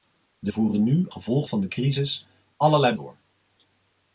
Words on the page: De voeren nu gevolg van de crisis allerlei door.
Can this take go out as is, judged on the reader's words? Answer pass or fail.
pass